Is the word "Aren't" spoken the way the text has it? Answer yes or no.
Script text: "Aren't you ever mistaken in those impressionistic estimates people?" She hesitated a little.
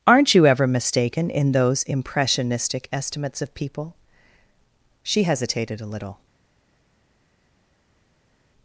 yes